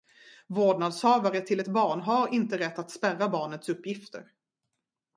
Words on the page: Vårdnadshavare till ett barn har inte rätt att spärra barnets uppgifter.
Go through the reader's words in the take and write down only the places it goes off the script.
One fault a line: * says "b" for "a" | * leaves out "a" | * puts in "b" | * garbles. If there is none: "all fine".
all fine